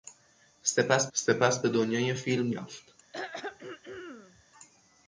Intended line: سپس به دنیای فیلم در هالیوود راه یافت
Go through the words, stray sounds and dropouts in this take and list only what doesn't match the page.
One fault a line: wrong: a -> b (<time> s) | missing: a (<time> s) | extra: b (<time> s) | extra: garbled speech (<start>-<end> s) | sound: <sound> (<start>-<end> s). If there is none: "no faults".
extra: سپس (1.1 s)
missing: در هالیوود راه (2.5 s)
sound: throat clearing (3.1-4.4 s)